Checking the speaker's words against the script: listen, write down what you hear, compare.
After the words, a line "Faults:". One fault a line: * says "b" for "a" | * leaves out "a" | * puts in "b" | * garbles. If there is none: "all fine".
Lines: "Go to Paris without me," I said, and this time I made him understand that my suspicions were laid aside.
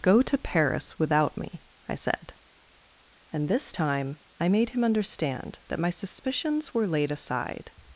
"Go to Paris without me," I said, and this time I made him understand that my suspicions were laid aside.
Faults:
all fine